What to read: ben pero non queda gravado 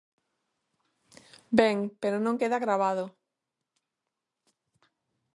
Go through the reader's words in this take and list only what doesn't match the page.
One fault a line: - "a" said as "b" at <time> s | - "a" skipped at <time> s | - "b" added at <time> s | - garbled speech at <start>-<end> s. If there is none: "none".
none